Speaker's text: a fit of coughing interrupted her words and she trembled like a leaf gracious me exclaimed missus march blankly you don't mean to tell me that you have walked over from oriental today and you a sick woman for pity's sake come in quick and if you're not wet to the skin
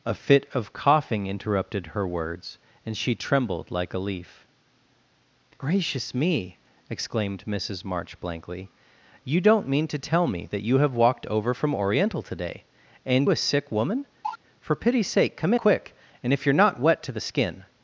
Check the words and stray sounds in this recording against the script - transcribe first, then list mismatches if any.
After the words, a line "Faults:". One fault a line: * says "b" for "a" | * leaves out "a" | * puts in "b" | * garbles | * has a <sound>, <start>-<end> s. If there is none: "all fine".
a fit of coughing interrupted her words and she trembled like a leaf gracious me exclaimed missus march blankly you don't mean to tell me that you have walked over from oriental today and a sick woman for pity's sake come quick and if you're not wet to the skin
Faults:
* leaves out "you"
* has a cough, 14.2-14.4 s
* leaves out "in"